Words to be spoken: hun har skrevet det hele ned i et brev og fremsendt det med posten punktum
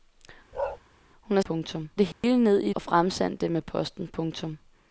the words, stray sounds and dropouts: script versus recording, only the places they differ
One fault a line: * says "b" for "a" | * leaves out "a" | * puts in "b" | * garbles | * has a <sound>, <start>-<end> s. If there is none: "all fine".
* has a bark, 0.5-0.8 s
* says "punktum" for "skrevet"
* has a dropout, 2.1-2.2 s
* leaves out "et brev"